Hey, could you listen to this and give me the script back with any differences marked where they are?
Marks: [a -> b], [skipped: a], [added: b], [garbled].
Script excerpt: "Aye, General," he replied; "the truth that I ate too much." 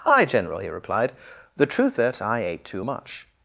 "Aye, General," he replied; "the truth that I ate too much."